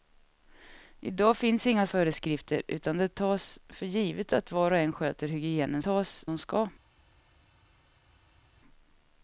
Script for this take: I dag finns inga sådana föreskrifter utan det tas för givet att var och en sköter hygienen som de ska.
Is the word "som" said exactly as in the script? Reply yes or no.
no